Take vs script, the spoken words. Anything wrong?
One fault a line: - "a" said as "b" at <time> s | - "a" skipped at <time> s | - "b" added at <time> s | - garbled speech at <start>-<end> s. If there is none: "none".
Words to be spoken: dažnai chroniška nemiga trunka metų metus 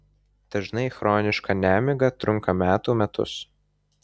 none